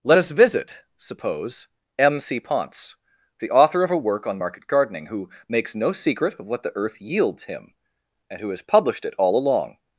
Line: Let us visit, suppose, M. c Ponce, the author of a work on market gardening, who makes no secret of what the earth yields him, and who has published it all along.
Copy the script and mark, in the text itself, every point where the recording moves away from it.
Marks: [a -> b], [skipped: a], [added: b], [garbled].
Let us visit, suppose, M. c Ponce, the author of a work on market gardening, who makes no secret of what the earth yields him, and who has published it all along.